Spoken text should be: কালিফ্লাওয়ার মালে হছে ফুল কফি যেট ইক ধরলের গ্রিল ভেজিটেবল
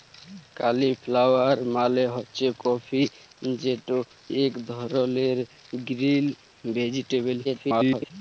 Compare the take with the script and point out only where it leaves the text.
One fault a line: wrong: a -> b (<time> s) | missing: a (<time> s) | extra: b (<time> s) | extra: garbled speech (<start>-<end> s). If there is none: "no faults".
missing: ফুল (2.5 s)
extra: garbled speech (7.4-8.1 s)